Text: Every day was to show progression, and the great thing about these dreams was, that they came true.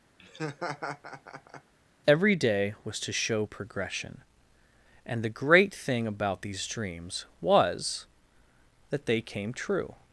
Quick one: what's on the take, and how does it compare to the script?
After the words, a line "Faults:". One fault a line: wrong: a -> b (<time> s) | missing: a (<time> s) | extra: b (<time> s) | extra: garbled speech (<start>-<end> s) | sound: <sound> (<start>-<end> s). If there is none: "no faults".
Every day was to show progression, and the great thing about these dreams was, that they came true.
Faults:
sound: laugh (0.2-1.7 s)